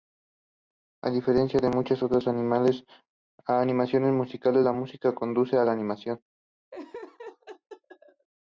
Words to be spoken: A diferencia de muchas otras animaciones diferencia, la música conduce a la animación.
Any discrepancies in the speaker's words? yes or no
yes